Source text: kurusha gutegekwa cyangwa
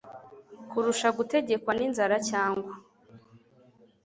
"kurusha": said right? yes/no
yes